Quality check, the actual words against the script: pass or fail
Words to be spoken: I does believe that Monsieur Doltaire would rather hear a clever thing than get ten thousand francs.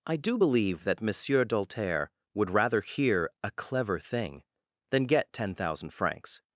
fail